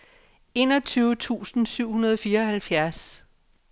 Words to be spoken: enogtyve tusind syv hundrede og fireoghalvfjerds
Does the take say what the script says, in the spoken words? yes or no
yes